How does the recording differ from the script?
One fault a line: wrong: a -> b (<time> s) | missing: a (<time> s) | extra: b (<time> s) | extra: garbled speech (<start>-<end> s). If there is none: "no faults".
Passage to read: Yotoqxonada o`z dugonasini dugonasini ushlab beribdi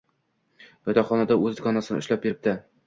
missing: dugonasini (2.0 s)